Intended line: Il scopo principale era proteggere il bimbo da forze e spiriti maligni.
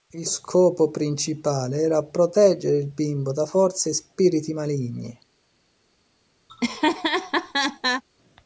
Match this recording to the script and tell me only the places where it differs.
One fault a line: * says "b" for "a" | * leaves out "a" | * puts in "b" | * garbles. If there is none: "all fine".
all fine